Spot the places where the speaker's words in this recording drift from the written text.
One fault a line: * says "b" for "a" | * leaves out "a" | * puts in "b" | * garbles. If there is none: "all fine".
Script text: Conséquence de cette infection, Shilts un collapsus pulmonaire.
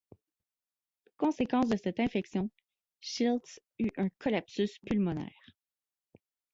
* puts in "eut"